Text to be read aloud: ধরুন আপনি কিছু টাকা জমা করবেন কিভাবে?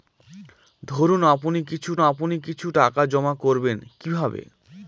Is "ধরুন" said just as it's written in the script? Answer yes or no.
yes